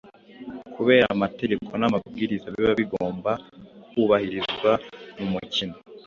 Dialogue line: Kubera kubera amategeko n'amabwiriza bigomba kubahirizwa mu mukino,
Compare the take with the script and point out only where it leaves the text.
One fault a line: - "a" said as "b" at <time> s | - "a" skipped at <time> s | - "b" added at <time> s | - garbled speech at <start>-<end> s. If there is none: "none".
- "kubera" skipped at 1.1 s
- "biba" added at 2.5 s